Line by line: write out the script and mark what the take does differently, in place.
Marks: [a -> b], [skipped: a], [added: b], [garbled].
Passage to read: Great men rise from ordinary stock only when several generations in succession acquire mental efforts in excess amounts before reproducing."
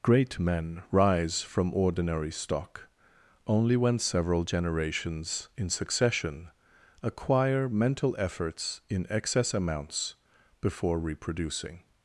Great men rise from ordinary stock only when several generations in succession acquire mental efforts in excess amounts before reproducing."